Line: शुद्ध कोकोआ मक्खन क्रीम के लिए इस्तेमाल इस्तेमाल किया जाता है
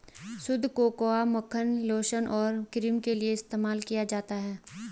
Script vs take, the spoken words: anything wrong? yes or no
yes